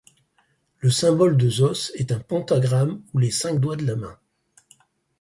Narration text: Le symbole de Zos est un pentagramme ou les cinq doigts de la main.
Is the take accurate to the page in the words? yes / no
yes